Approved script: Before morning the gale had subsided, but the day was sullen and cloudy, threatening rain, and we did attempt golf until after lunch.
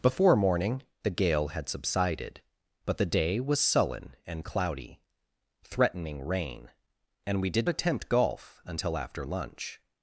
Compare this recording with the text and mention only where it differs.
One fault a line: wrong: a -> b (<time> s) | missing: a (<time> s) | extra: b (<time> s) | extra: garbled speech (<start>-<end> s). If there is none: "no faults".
no faults